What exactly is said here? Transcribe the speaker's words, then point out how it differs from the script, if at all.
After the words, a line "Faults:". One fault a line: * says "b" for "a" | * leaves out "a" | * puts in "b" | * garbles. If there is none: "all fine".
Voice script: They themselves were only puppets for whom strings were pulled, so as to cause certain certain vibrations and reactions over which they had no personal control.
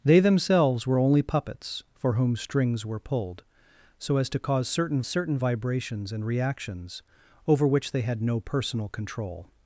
They themselves were only puppets for whom strings were pulled, so as to cause certain certain vibrations and reactions over which they had no personal control.
Faults:
all fine